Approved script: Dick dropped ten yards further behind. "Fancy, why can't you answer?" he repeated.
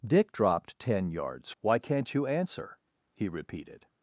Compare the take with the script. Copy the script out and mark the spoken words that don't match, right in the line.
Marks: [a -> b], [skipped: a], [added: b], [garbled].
Dick dropped ten yards [skipped: further behind. "Fancy,] why can't you answer?" he repeated.